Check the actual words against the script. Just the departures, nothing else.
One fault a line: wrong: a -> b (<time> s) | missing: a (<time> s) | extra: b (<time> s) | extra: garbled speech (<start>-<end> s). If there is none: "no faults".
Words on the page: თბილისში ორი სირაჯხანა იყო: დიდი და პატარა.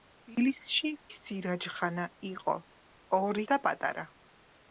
missing: ორი (0.9 s)
wrong: დიდი -> ორი (3.2 s)